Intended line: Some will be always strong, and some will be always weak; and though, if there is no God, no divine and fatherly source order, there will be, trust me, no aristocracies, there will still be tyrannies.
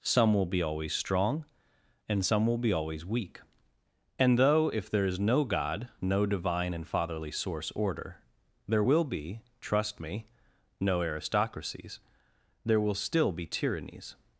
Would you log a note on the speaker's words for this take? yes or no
no